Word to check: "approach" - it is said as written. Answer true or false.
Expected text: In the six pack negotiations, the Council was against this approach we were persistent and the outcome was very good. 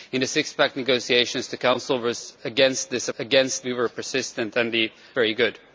false